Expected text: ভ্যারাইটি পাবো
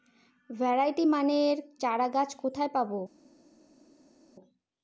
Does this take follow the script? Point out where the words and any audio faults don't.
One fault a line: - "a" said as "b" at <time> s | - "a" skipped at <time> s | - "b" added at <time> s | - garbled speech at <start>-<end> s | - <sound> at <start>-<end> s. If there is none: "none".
- "মানের চারাগাছ কোথায়" added at 1.0 s